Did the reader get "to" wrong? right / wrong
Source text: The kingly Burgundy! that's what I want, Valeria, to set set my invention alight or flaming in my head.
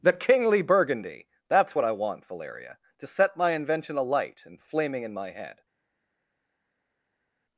right